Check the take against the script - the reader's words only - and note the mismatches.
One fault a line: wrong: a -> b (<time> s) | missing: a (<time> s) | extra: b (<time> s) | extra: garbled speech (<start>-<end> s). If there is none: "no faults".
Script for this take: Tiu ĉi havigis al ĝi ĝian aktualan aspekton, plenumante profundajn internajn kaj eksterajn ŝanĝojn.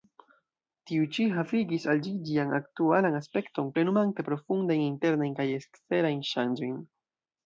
no faults